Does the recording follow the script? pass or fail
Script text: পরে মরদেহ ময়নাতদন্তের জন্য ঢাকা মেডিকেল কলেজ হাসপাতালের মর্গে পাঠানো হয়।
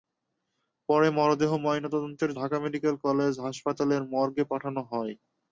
fail